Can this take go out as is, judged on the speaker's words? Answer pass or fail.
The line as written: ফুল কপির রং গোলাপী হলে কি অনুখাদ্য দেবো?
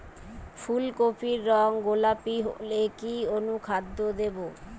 pass